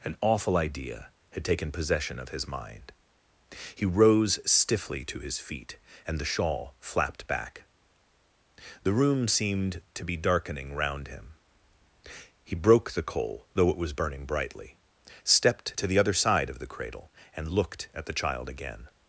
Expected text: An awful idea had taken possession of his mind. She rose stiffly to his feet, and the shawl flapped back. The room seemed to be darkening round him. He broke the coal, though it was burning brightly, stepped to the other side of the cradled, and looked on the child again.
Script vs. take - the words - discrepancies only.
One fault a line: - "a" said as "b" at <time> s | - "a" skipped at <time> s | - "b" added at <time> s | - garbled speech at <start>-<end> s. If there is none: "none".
- "She" said as "He" at 3.8 s
- "cradled" said as "cradle" at 16.7 s
- "on" said as "at" at 17.9 s